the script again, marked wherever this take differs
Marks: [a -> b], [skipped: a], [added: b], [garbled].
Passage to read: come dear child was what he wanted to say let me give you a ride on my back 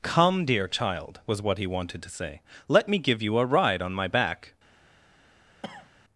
come dear child was what he wanted to say let me give you a ride on my back